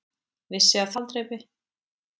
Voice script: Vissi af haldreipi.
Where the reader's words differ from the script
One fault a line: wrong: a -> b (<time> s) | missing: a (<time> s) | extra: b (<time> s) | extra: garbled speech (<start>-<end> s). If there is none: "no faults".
no faults